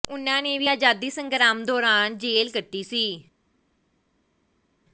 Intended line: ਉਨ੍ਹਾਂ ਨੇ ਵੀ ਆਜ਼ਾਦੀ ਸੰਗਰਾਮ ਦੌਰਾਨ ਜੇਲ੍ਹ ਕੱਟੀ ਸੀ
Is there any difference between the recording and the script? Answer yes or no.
no